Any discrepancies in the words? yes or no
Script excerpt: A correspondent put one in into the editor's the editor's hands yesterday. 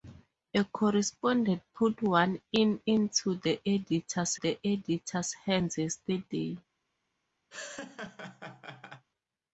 no